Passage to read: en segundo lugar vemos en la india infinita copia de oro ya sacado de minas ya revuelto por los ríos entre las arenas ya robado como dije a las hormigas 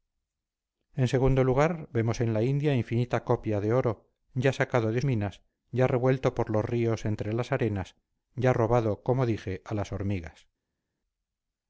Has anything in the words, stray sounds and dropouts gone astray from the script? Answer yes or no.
no